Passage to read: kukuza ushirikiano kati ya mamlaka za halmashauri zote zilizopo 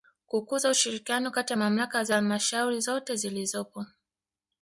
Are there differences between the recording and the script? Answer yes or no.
no